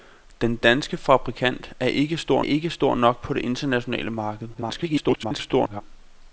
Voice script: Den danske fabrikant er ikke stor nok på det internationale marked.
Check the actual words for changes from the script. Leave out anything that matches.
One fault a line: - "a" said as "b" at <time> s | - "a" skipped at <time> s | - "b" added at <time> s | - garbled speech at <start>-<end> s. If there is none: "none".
- "ikke stor" added at 2.4 s
- garbled speech at 4.5-5.8 s